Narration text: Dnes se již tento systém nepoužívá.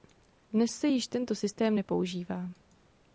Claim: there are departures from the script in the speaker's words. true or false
false